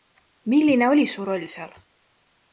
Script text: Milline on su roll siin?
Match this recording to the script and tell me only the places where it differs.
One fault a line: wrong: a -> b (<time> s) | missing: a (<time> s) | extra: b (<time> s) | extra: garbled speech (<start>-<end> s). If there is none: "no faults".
wrong: on -> oli (0.9 s)
wrong: siin -> seal (1.4 s)